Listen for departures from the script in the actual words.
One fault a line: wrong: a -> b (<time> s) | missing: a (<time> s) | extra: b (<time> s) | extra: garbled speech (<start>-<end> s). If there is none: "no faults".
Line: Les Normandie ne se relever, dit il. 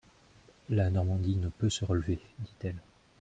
wrong: Les -> La (0.7 s)
extra: peut (1.5 s)
wrong: il -> elle (2.6 s)